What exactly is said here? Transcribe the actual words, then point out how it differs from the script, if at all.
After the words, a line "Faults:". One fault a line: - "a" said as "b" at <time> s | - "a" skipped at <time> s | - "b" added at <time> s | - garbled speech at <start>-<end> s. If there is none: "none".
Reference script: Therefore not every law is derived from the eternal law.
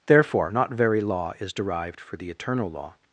Therefore not very law is derived for the eternal law.
Faults:
- "every" said as "very" at 0.7 s
- "from" said as "for" at 2.0 s